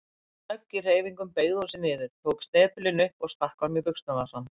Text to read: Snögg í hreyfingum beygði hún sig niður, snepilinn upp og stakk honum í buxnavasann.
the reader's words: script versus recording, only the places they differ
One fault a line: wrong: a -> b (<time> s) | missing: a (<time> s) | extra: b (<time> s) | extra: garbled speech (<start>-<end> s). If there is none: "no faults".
extra: tók (2.3 s)